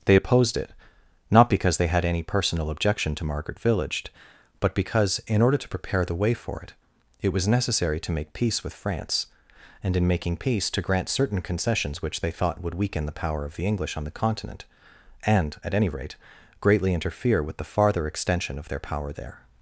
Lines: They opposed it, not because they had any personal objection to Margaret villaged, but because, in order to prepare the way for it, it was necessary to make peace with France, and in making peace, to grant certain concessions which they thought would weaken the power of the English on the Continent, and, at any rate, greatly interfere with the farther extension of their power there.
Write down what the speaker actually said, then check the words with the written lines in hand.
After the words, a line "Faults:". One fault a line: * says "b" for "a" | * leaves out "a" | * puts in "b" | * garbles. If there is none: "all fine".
They opposed it, not because they had any personal objection to Margaret villaged, but because, in order to prepare the way for it, it was necessary to make peace with France, and in making peace, to grant certain concessions which they thought would weaken the power of the English on the Continent, and, at any rate, greatly interfere with the farther extension of their power there.
Faults:
all fine